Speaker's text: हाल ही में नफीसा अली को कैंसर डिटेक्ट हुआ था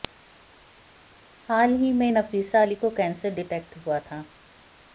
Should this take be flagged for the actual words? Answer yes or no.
no